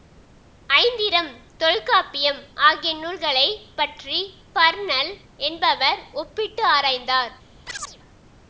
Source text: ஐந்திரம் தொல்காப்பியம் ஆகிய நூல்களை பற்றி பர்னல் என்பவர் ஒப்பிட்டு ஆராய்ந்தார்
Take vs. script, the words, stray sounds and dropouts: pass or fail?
fail